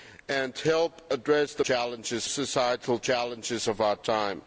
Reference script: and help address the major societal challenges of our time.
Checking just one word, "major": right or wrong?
wrong